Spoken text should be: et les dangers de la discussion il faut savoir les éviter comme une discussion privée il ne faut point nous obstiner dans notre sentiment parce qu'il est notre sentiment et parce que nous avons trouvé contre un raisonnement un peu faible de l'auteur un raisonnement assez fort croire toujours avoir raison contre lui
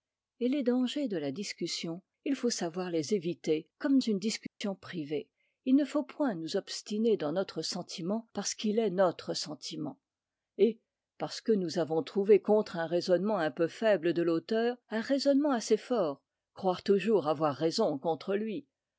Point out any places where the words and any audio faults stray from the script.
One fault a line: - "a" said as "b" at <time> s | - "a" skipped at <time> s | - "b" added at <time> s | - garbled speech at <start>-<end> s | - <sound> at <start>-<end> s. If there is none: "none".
- dropout at 4.5-4.6 s